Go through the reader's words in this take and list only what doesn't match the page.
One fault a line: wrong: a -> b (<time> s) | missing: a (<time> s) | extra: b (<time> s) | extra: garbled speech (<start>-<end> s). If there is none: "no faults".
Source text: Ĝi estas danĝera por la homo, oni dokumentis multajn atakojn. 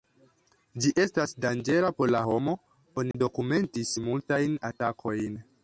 no faults